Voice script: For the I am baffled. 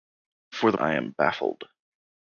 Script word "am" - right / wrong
right